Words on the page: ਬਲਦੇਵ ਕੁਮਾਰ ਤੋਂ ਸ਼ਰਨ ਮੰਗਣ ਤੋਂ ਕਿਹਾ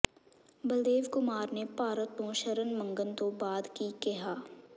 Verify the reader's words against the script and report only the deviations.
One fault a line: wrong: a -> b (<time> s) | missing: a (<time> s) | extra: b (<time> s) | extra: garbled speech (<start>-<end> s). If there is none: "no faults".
extra: ਨੇ ਭਾਰਤ (1.5 s)
extra: ਬਾਅਦ ਕੀ (3.3 s)